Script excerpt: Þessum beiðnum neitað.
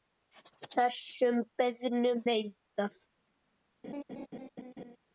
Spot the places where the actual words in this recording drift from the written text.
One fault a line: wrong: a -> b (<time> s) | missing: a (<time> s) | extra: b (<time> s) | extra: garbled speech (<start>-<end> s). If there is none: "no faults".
no faults